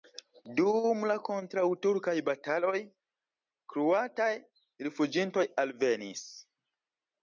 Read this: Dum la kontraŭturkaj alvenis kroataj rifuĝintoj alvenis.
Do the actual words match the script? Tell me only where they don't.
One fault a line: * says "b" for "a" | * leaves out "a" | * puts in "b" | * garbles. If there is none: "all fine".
* says "bataloj" for "alvenis"